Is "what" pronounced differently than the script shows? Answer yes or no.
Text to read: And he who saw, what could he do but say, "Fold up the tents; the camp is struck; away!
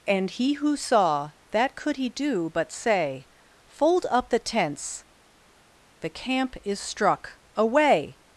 yes